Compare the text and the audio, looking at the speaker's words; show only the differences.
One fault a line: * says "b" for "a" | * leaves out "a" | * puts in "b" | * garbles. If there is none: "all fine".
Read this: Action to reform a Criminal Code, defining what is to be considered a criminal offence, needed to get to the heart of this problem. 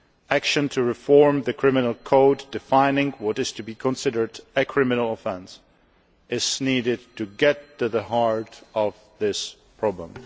* says "the" for "a"
* puts in "is"